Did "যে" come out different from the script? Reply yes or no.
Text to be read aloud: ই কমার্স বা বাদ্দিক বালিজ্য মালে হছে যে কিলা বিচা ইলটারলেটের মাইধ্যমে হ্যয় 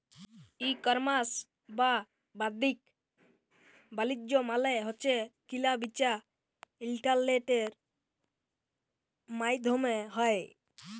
yes